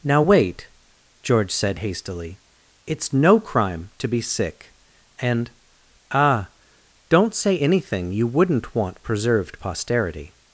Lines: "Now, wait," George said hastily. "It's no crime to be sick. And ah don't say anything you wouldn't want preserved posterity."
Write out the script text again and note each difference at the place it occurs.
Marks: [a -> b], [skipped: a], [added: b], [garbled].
"Now, wait," George said hastily. "It's no crime to be sick. And ah don't say anything you wouldn't want preserved posterity."